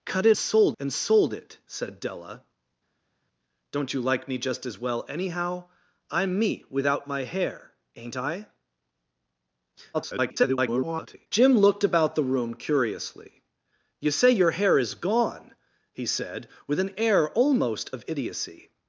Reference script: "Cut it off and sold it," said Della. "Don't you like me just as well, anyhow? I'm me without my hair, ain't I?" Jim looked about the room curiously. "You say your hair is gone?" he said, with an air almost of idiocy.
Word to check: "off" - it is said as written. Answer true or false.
false